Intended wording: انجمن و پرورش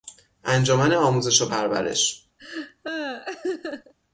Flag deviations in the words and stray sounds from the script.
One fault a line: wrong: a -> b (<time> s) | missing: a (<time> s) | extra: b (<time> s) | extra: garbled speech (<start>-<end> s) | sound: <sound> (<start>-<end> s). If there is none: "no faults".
extra: آموزش (0.9 s)
sound: laugh (2.4-3.9 s)